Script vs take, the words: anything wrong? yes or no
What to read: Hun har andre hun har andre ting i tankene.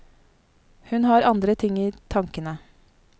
yes